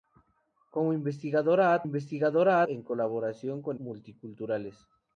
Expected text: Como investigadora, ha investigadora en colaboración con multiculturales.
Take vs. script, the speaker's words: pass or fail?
pass